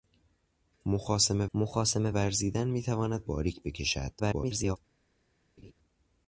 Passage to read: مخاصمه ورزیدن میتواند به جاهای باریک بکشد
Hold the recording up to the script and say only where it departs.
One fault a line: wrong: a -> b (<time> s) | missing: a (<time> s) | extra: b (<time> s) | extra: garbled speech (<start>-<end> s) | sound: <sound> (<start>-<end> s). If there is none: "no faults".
extra: مخاصمه (1.5 s)
missing: به جاهای (3.2 s)
extra: garbled speech (4.2-4.8 s)
sound: laugh (5.6-5.7 s)